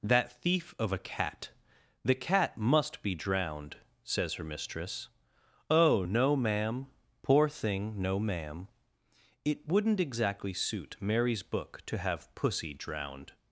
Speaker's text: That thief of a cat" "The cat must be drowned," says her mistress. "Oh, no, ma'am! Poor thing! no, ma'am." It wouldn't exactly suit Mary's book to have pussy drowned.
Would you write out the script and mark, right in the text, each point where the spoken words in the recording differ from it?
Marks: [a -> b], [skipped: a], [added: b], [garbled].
That thief of a cat" "The cat must be drowned," says her mistress. "Oh, no, ma'am! Poor thing! no, ma'am." It wouldn't exactly suit Mary's book to have pussy drowned.